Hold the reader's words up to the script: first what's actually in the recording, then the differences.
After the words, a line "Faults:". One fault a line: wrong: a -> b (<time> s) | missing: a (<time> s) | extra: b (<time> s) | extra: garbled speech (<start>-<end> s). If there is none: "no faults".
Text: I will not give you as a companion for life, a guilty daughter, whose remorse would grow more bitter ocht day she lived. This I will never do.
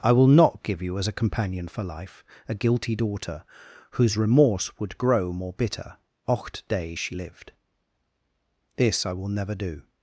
I will not give you as a companion for life, a guilty daughter, whose remorse would grow more bitter ocht day she lived. This I will never do.
Faults:
no faults